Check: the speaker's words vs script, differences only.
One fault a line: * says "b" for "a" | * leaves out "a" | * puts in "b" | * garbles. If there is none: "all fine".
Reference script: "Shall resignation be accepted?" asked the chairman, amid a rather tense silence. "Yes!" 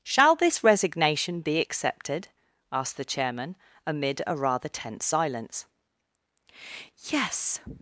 * puts in "this"